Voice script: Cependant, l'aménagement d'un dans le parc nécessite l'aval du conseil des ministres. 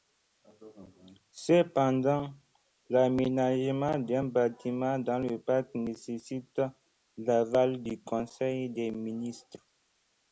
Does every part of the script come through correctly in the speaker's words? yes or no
no